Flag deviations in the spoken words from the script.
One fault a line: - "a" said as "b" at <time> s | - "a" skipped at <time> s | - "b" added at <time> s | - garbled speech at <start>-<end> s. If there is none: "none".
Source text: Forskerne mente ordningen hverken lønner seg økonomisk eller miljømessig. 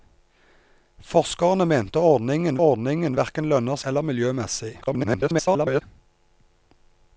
- "ordningen" added at 2.6 s
- "seg økonomisk" skipped at 3.8 s
- garbled speech at 4.8-5.8 s